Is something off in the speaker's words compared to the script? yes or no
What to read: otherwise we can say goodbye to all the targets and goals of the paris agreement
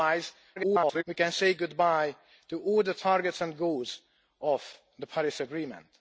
yes